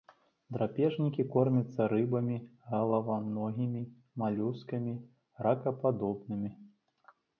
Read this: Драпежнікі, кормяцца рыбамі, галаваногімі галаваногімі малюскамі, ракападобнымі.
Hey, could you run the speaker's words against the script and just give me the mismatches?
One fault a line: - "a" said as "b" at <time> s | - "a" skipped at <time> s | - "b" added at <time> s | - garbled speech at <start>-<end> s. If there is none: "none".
- "галаваногімі" skipped at 3.8 s